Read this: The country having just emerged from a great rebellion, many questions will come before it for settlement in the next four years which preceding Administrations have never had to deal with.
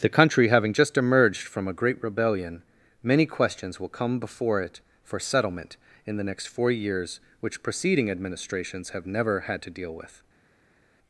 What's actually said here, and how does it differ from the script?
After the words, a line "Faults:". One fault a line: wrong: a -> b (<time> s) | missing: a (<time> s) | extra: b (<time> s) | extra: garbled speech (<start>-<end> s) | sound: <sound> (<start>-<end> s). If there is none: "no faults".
The country having just emerged from a great rebellion, many questions will come before it for settlement in the next four years which preceding Administrations have never had to deal with.
Faults:
no faults